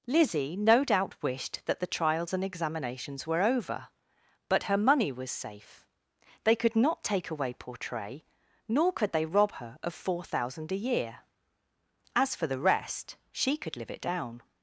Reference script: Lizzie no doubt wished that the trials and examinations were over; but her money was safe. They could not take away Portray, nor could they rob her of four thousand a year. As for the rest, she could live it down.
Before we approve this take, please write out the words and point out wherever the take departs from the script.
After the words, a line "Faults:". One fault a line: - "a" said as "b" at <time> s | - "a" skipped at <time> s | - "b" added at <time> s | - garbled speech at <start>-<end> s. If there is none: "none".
Lizzie no doubt wished that the trials and examinations were over; but her money was safe. They could not take away Portray, nor could they rob her of four thousand a year. As for the rest, she could live it down.
Faults:
none